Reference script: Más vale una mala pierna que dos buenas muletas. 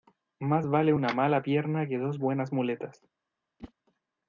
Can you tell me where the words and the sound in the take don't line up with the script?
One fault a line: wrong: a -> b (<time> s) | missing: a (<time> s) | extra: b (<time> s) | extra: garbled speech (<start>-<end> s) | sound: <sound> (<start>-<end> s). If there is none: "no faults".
sound: whoosh (3.6-3.7 s)